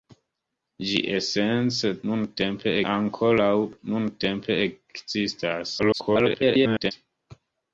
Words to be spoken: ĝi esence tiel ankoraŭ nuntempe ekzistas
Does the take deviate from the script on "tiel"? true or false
true